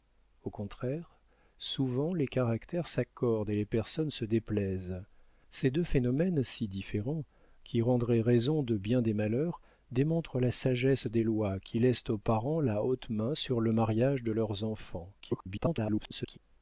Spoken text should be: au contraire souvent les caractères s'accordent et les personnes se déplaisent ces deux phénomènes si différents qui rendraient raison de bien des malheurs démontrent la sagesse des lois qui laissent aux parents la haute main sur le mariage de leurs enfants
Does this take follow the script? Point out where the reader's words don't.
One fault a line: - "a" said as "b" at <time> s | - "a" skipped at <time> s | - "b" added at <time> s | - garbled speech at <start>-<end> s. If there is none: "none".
- garbled speech at 15.2-16.4 s